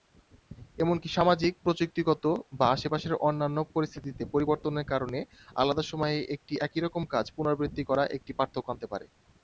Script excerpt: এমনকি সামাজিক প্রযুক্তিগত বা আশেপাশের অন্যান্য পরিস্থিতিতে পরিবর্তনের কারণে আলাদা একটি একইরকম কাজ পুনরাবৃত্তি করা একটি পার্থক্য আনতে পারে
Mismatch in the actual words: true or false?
true